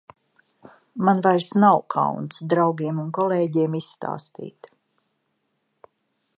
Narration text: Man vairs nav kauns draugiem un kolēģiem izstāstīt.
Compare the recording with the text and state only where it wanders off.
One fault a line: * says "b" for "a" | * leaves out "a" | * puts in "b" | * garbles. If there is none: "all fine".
all fine